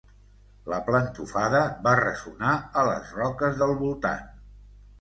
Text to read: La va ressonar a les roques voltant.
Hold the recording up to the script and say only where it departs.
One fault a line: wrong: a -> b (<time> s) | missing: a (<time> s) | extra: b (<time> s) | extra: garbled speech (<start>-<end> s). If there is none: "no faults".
extra: plantofada (0.9 s)
extra: del (3.6 s)